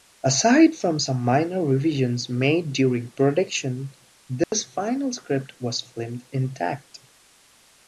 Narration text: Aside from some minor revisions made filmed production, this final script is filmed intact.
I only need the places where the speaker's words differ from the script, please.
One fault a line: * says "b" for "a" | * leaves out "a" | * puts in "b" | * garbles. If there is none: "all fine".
* says "during" for "filmed"
* says "was" for "is"